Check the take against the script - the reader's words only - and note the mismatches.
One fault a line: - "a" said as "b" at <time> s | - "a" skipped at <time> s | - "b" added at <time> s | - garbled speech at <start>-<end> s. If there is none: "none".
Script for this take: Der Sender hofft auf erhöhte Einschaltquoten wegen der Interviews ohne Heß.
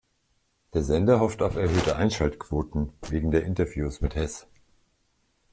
- "ohne" said as "mit" at 4.0 s